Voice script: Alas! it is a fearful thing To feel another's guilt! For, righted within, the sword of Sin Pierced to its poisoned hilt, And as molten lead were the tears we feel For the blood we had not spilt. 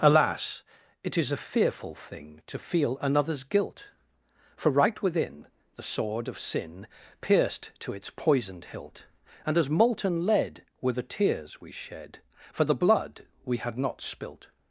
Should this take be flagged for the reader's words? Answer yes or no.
yes